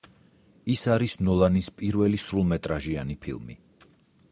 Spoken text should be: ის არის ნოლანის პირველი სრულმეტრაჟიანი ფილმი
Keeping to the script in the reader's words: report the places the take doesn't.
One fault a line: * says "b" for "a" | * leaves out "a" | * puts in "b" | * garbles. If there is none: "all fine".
all fine